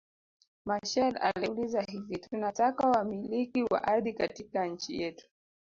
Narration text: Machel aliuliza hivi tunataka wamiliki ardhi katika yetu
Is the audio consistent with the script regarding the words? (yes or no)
no